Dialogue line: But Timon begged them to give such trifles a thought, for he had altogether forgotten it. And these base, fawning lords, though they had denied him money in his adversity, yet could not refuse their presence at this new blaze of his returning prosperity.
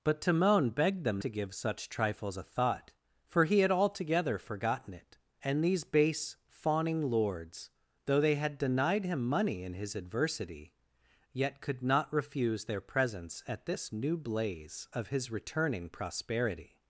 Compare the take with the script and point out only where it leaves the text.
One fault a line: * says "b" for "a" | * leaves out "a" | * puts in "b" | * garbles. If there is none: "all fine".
all fine